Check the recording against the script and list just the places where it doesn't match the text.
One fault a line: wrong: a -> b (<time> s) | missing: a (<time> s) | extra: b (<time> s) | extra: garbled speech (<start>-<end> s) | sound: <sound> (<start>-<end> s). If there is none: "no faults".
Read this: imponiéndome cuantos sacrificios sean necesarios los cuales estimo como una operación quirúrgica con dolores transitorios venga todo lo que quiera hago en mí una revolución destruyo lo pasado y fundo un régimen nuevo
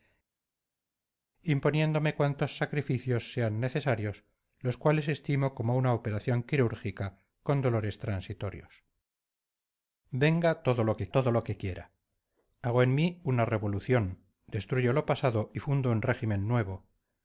extra: todo lo que (11.1 s)